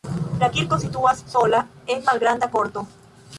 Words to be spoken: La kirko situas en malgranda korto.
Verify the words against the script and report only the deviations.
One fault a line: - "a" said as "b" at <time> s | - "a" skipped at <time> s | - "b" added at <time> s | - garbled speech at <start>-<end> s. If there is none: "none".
- "sola" added at 1.3 s